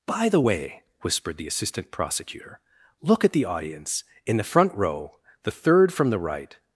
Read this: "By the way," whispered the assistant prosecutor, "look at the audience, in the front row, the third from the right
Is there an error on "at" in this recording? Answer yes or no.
no